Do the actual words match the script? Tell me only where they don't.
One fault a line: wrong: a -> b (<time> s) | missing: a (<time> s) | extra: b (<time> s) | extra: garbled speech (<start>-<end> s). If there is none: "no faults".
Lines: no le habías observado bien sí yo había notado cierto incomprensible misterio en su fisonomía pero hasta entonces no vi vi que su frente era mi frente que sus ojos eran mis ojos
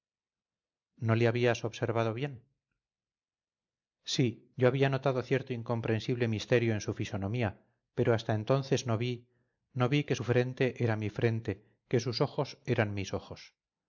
extra: no (9.7 s)